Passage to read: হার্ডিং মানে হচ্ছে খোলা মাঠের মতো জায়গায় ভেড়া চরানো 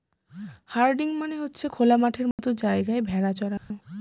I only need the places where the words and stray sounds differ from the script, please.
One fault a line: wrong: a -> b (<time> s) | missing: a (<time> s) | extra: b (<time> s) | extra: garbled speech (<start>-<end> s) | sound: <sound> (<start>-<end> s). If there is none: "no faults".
sound: dropout (2.3-2.4 s)
sound: dropout (3.6-3.7 s)